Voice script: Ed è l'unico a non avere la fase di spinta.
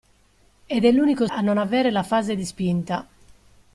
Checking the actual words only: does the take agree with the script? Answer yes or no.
yes